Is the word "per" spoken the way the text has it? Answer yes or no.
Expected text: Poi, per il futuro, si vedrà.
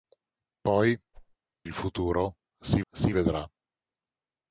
no